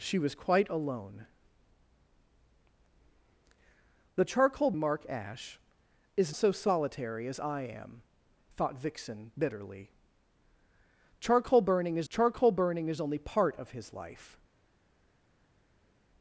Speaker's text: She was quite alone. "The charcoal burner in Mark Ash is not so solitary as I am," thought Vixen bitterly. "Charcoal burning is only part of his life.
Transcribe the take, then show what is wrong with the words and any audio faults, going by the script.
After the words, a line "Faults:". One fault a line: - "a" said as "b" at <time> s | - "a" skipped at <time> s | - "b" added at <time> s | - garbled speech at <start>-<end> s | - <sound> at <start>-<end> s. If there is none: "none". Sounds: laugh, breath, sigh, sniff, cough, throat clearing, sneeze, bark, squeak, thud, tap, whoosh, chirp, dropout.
She was quite alone. "The charcoal Mark Ash is so solitary as I am," thought Vixen bitterly. "Charcoal burning is charcoal burning is only part of his life.
Faults:
- "burner in" skipped at 4.7 s
- "not" skipped at 6.4 s
- "charcoal burning is" added at 12.1 s